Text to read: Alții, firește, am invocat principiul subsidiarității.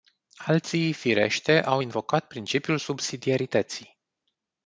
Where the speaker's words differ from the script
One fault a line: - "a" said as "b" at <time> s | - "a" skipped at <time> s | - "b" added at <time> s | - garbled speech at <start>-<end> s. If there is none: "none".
- "am" said as "au" at 1.6 s